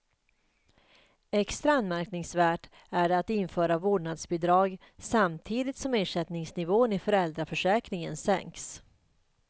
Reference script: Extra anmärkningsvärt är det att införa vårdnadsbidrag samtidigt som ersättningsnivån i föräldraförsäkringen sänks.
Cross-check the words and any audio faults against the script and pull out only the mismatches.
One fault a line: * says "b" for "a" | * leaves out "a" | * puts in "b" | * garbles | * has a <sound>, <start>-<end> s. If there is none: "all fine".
all fine